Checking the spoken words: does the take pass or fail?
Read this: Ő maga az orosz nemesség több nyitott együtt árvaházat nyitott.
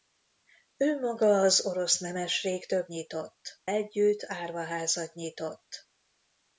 pass